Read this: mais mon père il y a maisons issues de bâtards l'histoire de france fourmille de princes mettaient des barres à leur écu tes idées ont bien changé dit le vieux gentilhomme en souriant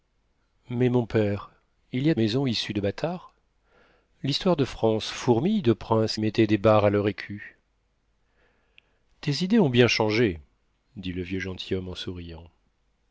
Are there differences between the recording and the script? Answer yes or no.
no